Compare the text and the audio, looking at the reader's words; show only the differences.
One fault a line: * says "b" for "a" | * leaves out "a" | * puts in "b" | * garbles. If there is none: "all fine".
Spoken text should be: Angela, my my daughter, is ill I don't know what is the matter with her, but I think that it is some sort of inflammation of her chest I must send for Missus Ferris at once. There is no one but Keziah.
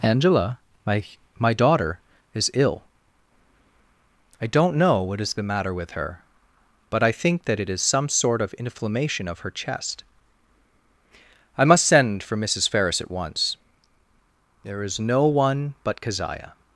all fine